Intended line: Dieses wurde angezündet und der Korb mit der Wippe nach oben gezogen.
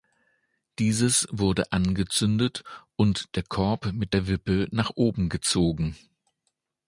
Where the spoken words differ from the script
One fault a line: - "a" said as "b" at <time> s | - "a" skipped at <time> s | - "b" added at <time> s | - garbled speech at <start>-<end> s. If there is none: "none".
none